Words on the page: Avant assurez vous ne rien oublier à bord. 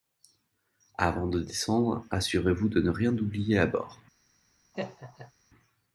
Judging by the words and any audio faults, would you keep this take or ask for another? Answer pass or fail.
fail